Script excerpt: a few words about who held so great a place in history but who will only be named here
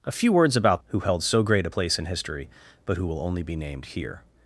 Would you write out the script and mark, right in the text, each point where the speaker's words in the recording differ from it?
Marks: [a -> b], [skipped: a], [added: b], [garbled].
a few words about who held so great a place in history but who will only be named here